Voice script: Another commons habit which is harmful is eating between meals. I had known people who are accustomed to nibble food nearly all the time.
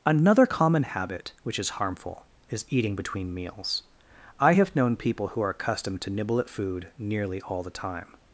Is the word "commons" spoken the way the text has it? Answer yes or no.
no